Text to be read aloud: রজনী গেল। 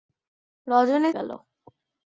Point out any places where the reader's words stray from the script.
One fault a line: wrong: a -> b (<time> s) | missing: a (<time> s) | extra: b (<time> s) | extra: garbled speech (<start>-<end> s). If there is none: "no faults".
no faults